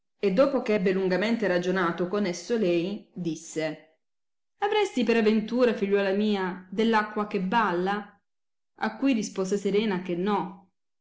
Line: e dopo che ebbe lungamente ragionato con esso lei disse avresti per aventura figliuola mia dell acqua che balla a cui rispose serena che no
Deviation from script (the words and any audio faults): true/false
false